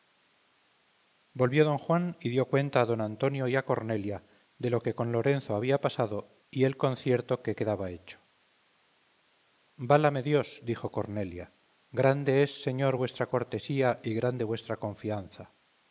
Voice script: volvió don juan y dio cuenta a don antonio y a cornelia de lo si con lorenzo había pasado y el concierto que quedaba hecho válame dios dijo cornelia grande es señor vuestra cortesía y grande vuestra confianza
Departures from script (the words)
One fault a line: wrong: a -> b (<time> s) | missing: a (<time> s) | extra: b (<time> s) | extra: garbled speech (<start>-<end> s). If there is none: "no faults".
wrong: si -> que (4.8 s)